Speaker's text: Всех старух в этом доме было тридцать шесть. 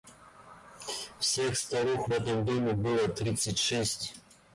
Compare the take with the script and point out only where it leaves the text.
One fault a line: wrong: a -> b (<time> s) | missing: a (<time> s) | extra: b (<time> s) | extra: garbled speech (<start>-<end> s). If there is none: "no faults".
no faults